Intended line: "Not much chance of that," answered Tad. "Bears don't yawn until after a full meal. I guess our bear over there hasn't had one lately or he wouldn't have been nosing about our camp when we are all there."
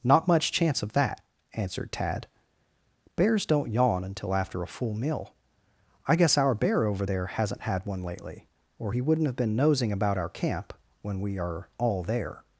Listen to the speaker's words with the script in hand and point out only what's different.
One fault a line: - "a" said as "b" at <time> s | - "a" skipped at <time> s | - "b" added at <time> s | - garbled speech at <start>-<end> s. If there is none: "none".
none